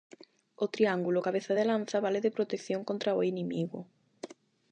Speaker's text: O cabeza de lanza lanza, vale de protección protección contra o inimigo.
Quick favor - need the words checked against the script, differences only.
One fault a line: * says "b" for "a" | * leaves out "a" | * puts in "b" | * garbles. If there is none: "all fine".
* puts in "triángulo"
* leaves out "lanza"
* leaves out "protección"